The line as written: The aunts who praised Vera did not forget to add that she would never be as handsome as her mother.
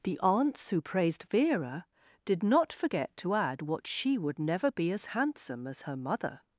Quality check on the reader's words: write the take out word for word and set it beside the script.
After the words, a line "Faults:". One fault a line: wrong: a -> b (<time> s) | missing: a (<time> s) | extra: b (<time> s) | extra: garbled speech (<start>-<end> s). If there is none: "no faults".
The aunts who praised Vera did not forget to add what she would never be as handsome as her mother.
Faults:
wrong: that -> what (3.6 s)